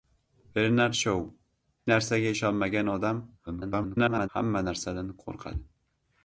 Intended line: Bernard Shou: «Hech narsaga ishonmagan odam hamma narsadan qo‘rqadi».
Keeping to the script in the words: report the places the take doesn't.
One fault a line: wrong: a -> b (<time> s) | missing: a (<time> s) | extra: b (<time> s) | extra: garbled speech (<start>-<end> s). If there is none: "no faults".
missing: Hech (1.2 s)
extra: garbled speech (3.5-4.3 s)